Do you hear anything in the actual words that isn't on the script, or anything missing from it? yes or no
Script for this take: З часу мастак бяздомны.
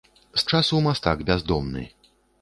no